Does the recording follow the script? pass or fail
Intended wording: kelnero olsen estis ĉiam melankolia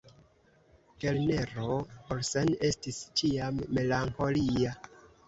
pass